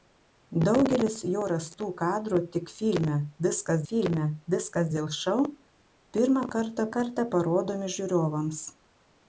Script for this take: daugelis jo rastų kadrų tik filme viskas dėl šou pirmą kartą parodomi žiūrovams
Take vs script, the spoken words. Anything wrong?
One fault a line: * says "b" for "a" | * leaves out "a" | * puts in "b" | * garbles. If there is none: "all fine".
* puts in "filme viskas"
* puts in "kartą"